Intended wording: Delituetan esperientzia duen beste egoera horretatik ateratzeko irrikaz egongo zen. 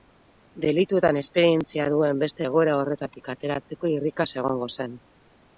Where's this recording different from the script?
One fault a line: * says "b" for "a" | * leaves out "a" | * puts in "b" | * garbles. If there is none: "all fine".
all fine